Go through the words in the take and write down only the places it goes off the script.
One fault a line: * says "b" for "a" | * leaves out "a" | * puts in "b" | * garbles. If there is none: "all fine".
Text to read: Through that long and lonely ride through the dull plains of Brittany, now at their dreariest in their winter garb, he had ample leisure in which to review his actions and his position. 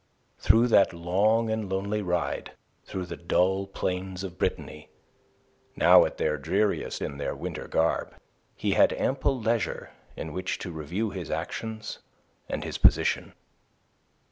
all fine